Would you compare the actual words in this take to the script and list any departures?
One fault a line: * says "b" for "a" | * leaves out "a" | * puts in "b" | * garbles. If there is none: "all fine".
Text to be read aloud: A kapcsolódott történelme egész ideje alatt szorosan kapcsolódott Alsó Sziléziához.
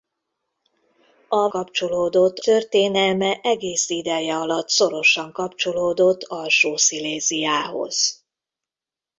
all fine